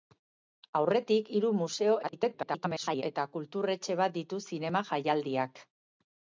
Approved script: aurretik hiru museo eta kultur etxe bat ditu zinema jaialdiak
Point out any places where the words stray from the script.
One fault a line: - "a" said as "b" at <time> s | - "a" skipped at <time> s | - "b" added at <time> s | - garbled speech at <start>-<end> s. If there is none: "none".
- garbled speech at 2.0-3.0 s